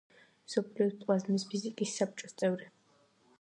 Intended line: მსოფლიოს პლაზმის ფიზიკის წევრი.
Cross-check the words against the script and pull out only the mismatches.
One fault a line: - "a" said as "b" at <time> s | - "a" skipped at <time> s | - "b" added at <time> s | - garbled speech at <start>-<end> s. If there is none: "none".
- "საბჭოს" added at 2.0 s